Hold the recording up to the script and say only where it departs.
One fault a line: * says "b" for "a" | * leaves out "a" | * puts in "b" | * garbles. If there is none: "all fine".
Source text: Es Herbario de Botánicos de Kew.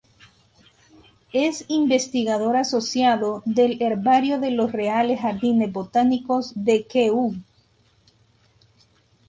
* puts in "investigador asociado del"
* puts in "los Reales Jardines"